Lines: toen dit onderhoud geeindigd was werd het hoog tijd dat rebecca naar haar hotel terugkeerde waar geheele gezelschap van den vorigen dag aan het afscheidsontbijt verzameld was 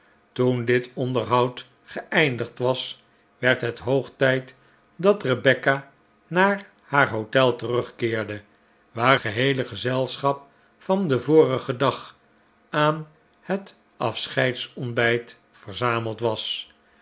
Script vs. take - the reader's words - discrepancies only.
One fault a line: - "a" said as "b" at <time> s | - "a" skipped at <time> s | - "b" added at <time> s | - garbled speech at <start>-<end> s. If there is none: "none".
none